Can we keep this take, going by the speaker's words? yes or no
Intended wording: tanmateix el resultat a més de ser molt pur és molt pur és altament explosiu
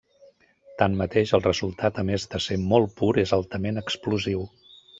no